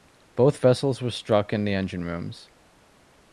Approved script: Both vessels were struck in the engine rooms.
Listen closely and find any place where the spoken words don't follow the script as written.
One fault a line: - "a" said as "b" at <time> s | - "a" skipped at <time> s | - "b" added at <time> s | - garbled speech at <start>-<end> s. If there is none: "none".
none